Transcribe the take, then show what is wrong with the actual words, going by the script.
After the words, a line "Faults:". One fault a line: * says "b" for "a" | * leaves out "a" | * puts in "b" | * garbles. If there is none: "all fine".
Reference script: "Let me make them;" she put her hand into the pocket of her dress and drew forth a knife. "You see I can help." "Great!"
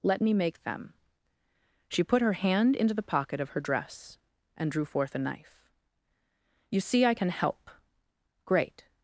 "Let me make them;" she put her hand into the pocket of her dress and drew forth a knife. "You see I can help." "Great!"
Faults:
all fine